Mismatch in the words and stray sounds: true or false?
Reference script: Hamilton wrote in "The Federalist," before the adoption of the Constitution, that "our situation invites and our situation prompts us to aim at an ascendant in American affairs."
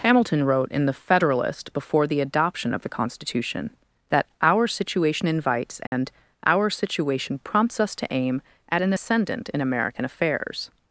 true